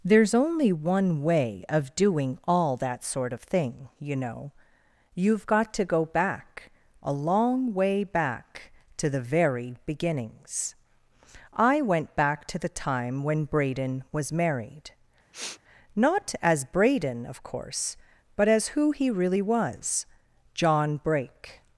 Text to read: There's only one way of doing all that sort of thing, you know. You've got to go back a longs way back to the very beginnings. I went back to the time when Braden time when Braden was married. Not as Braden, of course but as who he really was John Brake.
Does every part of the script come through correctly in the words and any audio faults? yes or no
no